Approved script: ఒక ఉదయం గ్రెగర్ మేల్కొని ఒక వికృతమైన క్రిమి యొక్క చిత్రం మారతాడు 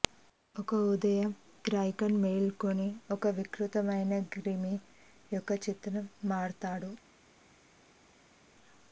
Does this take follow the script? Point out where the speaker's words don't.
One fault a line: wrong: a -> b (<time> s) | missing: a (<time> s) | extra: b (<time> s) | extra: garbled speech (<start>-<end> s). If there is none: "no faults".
no faults